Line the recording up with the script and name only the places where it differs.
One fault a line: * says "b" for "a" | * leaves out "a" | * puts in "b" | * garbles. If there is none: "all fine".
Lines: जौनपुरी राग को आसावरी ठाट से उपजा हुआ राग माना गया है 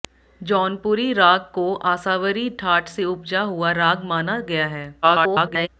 * garbles